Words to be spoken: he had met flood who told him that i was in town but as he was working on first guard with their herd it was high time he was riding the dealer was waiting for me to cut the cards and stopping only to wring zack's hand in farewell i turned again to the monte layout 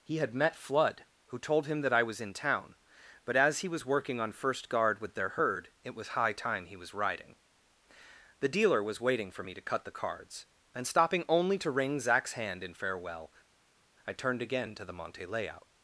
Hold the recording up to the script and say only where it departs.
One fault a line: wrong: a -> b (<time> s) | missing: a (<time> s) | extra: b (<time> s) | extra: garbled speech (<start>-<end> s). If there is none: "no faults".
no faults